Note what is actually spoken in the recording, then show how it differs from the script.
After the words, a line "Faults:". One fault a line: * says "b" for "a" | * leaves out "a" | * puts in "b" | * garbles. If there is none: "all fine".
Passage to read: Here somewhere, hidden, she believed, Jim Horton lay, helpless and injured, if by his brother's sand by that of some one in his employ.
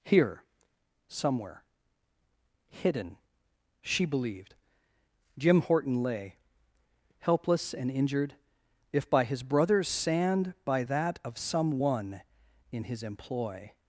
Here somewhere, hidden, she believed, Jim Horton lay, helpless and injured, if by his brother's sand by that of some one in his employ.
Faults:
all fine